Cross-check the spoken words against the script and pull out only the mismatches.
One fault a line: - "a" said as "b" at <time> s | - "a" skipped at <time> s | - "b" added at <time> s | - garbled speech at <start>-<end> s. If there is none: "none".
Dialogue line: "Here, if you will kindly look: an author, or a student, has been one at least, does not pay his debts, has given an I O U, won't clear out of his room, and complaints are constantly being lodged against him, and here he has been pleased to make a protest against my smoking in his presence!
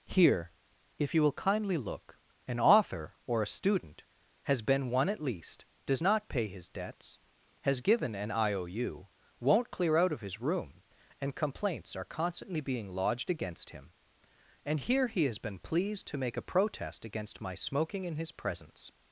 none